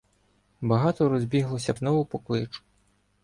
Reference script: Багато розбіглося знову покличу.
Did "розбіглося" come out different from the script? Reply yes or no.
no